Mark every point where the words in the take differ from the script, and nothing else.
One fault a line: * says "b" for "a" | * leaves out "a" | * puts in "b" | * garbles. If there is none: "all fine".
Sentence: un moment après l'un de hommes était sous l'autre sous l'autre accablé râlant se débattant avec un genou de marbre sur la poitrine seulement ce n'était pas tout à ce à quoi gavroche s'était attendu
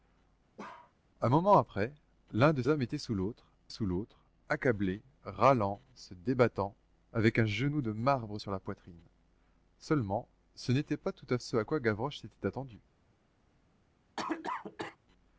all fine